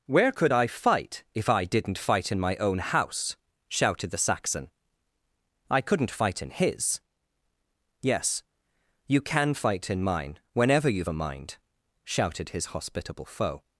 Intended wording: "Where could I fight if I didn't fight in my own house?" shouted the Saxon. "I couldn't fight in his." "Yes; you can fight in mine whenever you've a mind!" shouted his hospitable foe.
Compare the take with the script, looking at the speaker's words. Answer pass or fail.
pass